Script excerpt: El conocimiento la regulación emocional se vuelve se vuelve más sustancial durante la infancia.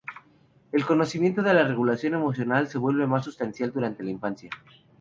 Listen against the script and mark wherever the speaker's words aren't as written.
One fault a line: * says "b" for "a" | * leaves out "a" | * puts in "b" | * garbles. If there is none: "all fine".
* puts in "de"
* leaves out "se vuelve"